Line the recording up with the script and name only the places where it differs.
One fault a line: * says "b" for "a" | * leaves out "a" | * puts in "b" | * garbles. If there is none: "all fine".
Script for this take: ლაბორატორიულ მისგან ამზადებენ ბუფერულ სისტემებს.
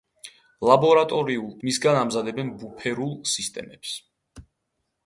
all fine